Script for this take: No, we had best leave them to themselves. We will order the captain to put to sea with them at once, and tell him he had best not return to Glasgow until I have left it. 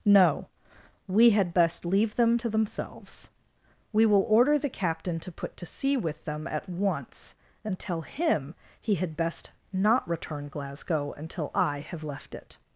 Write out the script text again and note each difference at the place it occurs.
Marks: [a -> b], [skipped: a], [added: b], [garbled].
No, we had best leave them to themselves. We will order the captain to put to sea with them at once, and tell him he had best not return [skipped: to] Glasgow until I have left it.